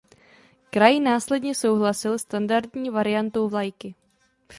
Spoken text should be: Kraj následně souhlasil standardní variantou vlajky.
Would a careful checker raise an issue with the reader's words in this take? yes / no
no